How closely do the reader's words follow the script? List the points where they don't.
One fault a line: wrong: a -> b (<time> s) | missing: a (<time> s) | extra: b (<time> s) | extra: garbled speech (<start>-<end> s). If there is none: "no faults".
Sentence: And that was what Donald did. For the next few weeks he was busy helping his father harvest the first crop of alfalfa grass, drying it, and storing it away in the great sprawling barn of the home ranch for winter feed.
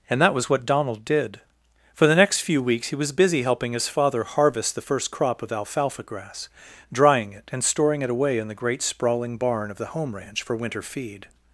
no faults